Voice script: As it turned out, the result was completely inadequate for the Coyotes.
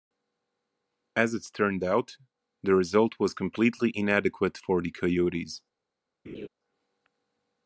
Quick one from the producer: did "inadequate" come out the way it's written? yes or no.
yes